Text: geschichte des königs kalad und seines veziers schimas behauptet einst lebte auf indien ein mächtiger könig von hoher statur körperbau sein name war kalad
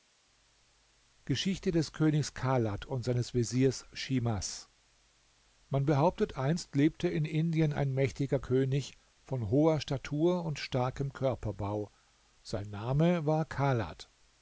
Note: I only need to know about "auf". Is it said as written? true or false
false